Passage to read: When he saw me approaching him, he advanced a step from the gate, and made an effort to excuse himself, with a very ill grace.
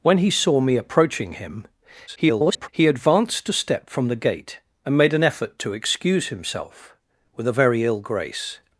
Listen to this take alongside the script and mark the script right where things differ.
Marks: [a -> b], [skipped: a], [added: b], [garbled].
When he saw me approaching him, [garbled] he advanced a step from the gate, and made an effort to excuse himself, with a very ill grace.